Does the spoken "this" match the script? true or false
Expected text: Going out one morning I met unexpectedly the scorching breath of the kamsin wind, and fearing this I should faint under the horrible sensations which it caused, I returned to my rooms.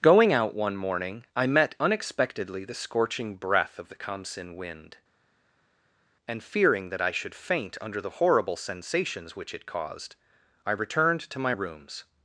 false